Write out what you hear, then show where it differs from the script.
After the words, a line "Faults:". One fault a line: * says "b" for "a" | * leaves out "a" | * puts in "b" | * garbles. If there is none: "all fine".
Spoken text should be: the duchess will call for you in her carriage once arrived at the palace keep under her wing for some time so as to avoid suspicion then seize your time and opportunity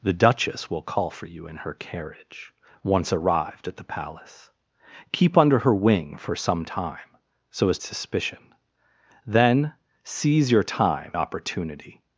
the duchess will call for you in her carriage once arrived at the palace keep under her wing for some time so as suspicion then seize your time opportunity
Faults:
* leaves out "to avoid"
* leaves out "and"